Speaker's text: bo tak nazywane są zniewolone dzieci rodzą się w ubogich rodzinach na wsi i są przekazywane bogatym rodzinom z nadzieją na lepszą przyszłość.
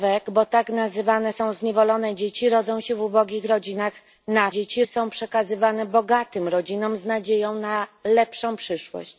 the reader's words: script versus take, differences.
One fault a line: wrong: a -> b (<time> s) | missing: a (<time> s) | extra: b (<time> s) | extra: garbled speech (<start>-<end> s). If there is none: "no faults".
wrong: wsi -> dzieci (4.5 s)